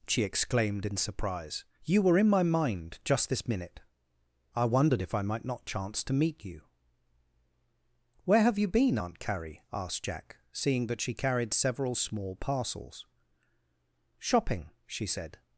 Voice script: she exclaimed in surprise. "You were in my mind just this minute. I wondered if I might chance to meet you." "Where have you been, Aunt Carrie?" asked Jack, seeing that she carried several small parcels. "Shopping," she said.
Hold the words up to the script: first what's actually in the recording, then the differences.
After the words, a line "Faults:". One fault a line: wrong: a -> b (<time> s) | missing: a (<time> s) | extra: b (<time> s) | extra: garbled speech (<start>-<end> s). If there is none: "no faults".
she exclaimed in surprise. "You were in my mind just this minute. I wondered if I might not chance to meet you." "Where have you been, Aunt Carrie?" asked Jack, seeing that she carried several small parcels. "Shopping," she said.
Faults:
extra: not (5.5 s)